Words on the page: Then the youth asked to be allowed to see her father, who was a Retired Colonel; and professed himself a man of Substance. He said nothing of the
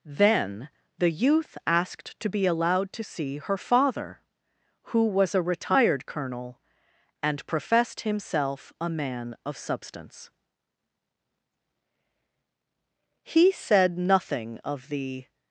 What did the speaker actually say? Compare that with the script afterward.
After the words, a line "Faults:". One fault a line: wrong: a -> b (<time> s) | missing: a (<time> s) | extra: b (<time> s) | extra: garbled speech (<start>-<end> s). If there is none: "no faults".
Then the youth asked to be allowed to see her father, who was a Retired Colonel; and professed himself a man of Substance. He said nothing of the
Faults:
no faults